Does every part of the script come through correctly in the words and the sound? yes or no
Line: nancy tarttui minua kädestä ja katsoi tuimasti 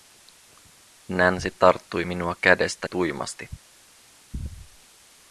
no